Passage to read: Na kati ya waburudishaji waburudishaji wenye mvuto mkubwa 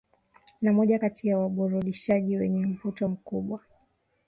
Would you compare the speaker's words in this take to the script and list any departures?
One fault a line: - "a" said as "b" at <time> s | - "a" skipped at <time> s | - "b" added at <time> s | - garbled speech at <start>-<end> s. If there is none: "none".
- "moja" added at 0.7 s
- "waburudishaji" skipped at 2.4 s